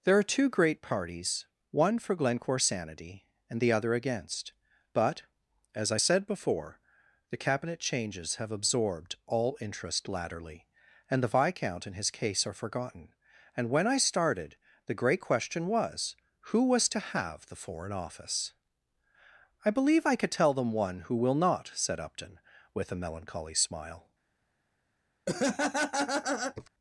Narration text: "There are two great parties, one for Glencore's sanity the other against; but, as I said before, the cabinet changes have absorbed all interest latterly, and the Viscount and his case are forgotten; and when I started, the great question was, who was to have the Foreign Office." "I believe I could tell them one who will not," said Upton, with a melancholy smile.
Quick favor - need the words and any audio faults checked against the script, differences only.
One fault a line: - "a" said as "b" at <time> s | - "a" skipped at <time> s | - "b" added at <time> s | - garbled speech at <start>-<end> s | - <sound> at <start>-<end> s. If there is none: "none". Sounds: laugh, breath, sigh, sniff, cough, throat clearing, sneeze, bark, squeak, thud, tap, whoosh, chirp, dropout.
- "and" added at 3.5 s
- laugh at 25.3-26.7 s